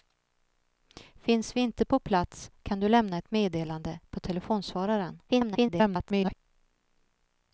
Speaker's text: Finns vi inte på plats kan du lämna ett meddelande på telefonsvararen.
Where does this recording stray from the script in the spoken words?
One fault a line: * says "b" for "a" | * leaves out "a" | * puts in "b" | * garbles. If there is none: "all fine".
* garbles